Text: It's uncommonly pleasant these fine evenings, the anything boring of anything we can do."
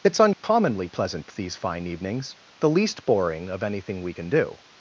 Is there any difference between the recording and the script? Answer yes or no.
yes